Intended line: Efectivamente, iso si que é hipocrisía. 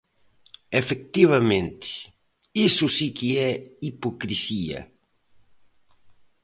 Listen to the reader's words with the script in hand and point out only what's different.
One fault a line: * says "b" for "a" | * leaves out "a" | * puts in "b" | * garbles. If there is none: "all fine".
all fine